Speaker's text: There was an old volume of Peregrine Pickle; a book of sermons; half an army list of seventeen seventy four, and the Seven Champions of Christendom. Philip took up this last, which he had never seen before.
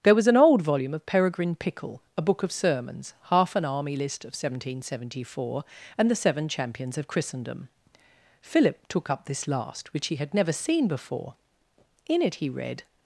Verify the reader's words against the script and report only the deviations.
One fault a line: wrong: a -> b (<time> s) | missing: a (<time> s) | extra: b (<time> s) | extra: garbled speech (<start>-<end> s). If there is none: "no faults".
extra: In it he read (12.1 s)